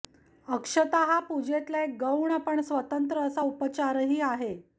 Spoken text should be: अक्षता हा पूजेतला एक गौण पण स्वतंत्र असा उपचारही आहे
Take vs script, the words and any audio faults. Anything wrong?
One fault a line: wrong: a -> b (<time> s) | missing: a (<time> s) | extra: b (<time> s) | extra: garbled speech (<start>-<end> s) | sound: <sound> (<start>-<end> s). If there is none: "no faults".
no faults